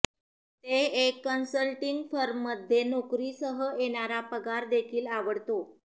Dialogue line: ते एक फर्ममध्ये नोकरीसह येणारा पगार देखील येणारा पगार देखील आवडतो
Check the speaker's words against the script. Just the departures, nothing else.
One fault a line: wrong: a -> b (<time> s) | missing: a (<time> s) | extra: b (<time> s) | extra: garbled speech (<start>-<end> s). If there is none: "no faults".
extra: कन्सल्टिंग (1.2 s)
missing: येणारा पगार देखील (5.1 s)